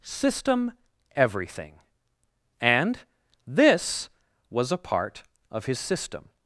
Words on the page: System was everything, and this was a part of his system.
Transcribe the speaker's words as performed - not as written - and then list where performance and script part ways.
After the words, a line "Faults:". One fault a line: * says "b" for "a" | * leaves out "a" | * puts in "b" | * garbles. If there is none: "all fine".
System everything, and this was a part of his system.
Faults:
* leaves out "was"